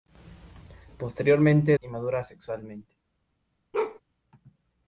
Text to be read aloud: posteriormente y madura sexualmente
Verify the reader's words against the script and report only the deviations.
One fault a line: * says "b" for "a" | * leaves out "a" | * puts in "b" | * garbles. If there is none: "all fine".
all fine